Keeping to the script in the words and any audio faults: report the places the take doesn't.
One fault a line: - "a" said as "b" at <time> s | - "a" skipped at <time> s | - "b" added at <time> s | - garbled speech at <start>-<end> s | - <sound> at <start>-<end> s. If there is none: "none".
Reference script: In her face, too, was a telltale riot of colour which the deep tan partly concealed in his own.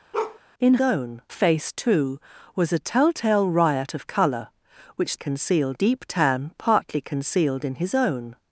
- bark at 0.1-0.4 s
- "her" said as "own" at 0.8 s
- "the" said as "concealed" at 5.1 s